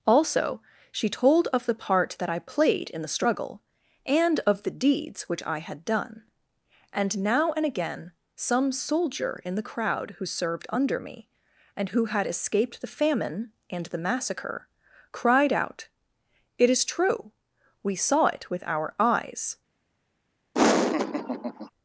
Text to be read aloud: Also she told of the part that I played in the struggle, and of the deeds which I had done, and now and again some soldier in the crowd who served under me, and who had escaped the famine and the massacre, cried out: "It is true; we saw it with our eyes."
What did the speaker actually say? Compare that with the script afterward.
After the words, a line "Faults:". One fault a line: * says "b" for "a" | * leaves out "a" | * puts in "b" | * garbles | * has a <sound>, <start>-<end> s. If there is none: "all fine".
Also she told of the part that I played in the struggle, and of the deeds which I had done, and now and again some soldier in the crowd who served under me, and who had escaped the famine and the massacre, cried out: "It is true; we saw it with our eyes."
Faults:
* has a laugh, 20.5-21.7 s